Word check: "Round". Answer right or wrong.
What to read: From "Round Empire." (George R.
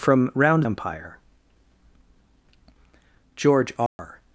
right